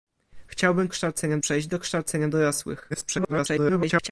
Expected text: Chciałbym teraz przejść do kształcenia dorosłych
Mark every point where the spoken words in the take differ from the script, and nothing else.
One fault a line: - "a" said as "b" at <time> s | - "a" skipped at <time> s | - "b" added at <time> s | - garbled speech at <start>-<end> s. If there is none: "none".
- "teraz" said as "kształcenia" at 0.9 s
- garbled speech at 2.9-4.1 s